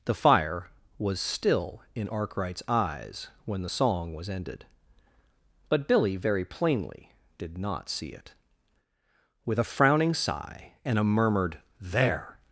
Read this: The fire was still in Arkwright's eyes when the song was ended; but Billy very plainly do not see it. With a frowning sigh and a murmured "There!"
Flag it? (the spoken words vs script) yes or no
yes